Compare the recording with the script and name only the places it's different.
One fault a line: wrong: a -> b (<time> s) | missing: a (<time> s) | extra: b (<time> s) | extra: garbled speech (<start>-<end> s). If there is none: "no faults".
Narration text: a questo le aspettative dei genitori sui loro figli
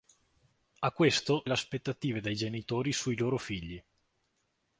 no faults